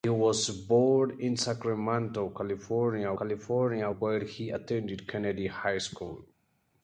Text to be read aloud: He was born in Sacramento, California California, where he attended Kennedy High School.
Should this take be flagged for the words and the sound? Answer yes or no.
no